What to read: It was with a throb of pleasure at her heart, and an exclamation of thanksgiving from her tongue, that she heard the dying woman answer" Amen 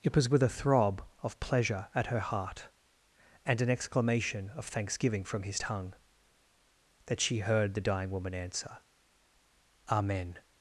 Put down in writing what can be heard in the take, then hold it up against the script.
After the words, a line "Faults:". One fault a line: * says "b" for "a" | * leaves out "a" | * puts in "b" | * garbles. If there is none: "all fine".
It was with a throb of pleasure at her heart, and an exclamation of thanksgiving from his tongue, that she heard the dying woman answer" Amen
Faults:
* says "his" for "her"